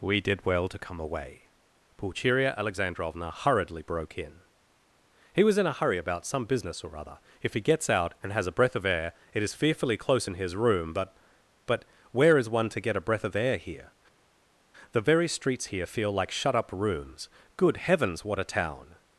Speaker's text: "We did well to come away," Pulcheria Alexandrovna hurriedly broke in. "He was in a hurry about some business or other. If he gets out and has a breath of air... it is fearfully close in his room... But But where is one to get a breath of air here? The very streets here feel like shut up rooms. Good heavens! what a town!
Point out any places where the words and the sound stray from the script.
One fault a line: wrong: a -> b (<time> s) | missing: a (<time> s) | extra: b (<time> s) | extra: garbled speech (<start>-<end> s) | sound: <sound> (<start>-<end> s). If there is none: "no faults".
no faults